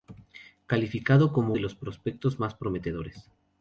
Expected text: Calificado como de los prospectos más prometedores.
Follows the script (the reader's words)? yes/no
yes